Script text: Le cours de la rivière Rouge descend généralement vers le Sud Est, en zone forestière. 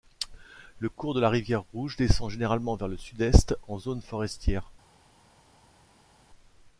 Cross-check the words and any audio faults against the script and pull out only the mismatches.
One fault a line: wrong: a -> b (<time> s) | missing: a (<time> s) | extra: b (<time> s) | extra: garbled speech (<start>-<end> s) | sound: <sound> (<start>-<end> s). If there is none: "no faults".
no faults